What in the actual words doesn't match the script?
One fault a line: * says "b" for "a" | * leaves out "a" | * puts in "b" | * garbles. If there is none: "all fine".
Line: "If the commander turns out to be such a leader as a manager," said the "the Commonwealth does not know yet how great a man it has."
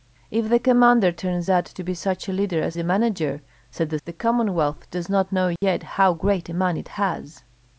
all fine